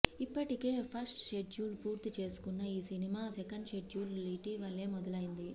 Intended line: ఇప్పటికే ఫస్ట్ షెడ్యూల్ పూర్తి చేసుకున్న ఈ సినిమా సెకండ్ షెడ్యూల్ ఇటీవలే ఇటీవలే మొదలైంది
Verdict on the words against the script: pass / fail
fail